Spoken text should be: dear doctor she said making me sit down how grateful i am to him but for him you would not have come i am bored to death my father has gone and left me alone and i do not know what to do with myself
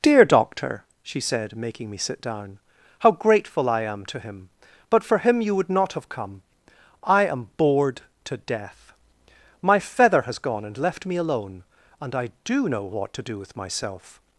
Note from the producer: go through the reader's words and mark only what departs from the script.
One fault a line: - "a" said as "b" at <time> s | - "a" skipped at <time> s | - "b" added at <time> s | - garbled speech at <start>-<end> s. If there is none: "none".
- "father" said as "feather" at 9.8 s
- "not" skipped at 12.7 s